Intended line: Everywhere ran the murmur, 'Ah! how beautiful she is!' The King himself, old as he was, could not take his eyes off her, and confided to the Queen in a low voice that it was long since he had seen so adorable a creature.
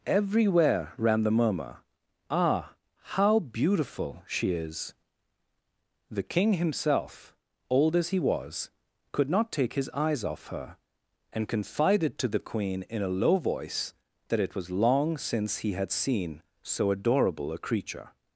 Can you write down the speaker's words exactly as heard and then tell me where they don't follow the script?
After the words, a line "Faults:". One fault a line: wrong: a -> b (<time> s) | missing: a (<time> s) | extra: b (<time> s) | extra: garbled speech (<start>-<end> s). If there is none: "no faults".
Everywhere ran the murmur, 'Ah! how beautiful she is!' The King himself, old as he was, could not take his eyes off her, and confided to the Queen in a low voice that it was long since he had seen so adorable a creature.
Faults:
no faults